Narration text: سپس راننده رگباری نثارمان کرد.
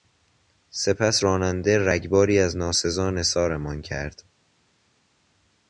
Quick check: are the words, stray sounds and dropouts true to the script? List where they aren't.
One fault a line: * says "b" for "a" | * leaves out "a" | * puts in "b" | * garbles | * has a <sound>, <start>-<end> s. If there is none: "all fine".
* puts in "از ناسزا"